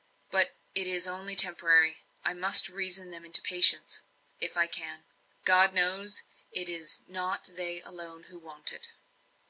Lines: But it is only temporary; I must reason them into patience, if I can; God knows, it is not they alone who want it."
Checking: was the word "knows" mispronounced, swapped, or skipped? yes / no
no